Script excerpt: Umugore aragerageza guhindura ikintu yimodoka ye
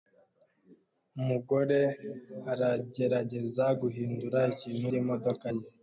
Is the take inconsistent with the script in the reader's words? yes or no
no